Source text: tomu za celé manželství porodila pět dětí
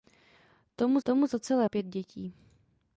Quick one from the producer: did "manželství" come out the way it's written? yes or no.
no